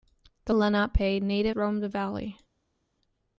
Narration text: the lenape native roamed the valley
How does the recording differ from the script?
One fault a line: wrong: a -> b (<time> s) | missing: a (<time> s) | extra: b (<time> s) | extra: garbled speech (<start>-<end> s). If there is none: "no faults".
no faults